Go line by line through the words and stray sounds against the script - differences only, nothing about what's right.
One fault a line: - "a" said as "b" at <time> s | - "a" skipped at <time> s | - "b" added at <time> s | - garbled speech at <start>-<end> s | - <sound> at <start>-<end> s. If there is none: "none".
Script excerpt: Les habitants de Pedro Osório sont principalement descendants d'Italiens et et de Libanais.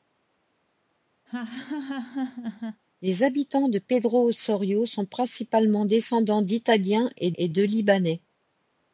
- laugh at 1.3-2.8 s